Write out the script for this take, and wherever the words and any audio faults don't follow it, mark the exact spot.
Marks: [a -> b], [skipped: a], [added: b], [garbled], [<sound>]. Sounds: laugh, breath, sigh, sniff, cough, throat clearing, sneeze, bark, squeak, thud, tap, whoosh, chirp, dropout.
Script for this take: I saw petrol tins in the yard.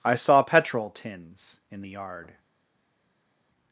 I saw petrol tins in the yard.